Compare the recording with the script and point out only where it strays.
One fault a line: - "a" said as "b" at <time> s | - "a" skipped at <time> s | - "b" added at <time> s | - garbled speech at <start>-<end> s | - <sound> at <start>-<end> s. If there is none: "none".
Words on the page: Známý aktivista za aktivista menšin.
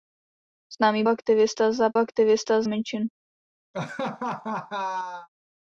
- laugh at 3.7-5.3 s